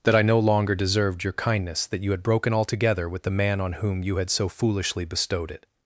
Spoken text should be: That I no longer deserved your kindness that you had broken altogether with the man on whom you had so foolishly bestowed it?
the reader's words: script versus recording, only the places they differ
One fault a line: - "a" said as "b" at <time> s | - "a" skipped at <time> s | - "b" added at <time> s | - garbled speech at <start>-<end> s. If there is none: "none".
none